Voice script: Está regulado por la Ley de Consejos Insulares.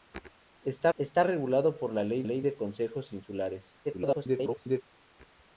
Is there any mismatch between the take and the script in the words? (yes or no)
yes